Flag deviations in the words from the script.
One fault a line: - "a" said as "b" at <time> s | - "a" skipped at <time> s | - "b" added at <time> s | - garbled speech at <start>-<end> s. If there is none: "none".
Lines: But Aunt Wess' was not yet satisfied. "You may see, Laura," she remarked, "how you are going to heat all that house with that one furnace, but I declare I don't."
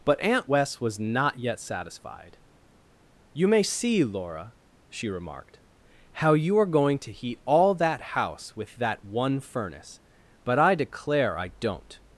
none